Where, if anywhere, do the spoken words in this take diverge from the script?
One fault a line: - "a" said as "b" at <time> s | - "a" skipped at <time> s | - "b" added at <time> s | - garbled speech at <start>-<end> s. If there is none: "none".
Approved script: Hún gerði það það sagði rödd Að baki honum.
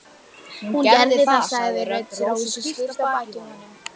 - "það" skipped at 1.4 s
- "Rósu skýrt" added at 2.3 s